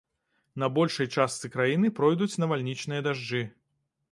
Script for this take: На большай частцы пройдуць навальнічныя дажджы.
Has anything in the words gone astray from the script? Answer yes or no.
yes